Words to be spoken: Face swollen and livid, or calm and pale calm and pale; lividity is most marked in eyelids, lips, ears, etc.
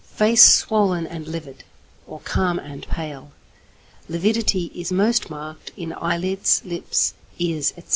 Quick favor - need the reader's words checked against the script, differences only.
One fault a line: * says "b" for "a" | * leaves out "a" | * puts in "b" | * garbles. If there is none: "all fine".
* leaves out "calm and pale"